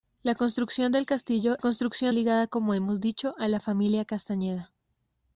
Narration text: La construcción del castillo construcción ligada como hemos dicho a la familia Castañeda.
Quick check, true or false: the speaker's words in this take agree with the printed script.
true